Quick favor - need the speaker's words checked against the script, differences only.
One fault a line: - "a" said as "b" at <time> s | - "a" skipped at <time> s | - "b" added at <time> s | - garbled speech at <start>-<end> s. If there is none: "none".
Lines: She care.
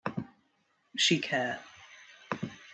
none